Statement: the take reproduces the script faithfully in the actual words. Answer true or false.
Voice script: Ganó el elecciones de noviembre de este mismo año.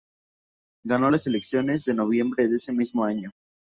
false